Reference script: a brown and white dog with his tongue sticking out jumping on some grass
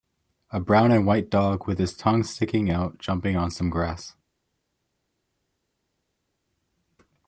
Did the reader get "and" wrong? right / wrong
right